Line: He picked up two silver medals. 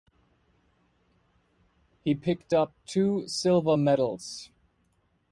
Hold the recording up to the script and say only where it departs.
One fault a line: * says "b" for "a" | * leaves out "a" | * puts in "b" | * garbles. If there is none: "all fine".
all fine